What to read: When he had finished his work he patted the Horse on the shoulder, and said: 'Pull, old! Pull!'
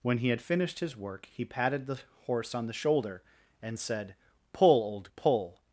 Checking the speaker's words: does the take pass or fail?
pass